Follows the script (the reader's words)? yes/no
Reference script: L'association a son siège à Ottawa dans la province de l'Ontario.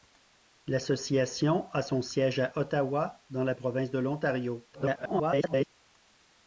no